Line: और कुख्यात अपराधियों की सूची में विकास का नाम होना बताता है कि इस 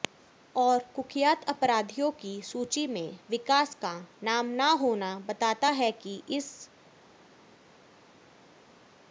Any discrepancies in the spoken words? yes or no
yes